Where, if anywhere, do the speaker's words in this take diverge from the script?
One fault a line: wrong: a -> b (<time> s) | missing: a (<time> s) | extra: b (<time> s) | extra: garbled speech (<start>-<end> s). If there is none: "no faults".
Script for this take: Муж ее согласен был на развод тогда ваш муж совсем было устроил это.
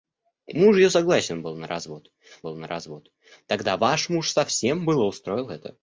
extra: был на развод (2.4 s)